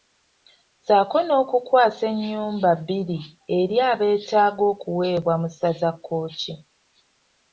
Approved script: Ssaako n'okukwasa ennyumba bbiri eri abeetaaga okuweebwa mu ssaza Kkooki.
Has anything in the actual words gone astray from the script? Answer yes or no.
no